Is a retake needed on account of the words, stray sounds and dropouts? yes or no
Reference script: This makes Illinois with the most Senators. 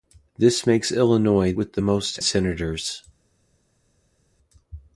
no